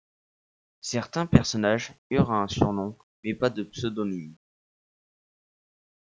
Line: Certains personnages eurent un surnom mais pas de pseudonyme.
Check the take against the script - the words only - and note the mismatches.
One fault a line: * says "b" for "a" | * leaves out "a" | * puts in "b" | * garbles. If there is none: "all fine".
all fine